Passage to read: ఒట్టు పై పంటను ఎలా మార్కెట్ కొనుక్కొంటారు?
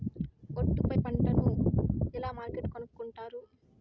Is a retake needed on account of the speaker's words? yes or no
no